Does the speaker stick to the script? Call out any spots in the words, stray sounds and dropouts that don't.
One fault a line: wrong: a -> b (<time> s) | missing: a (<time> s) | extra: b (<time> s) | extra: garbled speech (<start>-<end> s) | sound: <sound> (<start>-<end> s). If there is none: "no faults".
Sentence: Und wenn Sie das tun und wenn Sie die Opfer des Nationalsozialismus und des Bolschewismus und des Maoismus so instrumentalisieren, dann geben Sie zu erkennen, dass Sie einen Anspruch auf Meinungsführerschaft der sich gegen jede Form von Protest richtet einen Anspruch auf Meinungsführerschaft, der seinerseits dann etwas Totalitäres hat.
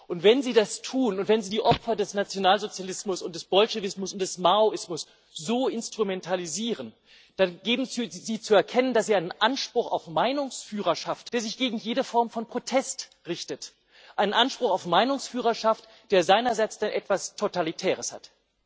no faults